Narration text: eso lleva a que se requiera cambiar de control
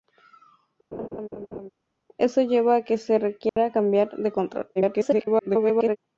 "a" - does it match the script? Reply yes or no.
yes